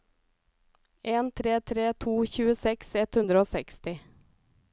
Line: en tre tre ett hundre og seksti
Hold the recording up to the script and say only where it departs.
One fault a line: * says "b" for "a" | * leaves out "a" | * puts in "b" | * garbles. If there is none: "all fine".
* puts in "to tjueseks"